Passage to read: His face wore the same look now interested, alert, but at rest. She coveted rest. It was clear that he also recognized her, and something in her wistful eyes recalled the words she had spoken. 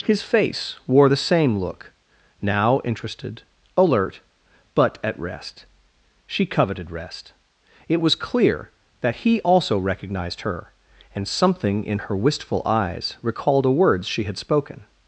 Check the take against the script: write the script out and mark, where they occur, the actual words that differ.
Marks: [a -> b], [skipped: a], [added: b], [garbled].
His face wore the same look now interested, alert, but at rest. She coveted rest. It was clear that he also recognized her, and something in her wistful eyes recalled [the -> a] words she had spoken.